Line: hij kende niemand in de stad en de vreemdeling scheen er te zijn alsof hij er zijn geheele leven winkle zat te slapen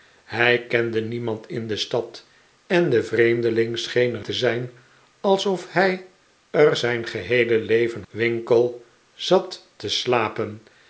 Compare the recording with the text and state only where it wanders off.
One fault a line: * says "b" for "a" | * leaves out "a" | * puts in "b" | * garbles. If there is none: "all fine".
all fine